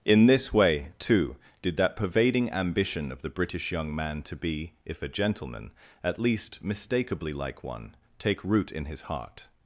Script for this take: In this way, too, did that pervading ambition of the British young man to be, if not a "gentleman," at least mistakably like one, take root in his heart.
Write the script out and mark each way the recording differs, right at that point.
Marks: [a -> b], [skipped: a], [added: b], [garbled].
In this way, too, did that pervading ambition of the British young man to be, if [skipped: not] a "gentleman," at least mistakably like one, take root in his heart.